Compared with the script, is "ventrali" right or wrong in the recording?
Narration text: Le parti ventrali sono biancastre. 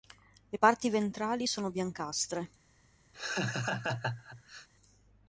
right